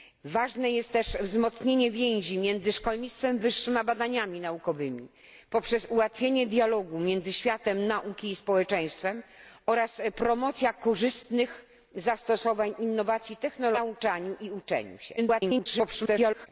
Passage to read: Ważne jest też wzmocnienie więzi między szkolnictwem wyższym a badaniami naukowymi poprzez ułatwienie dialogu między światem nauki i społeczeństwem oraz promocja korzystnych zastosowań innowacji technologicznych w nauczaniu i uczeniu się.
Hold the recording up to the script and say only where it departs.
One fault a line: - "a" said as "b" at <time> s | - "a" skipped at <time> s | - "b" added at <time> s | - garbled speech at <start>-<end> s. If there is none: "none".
- garbled speech at 15.2-16.5 s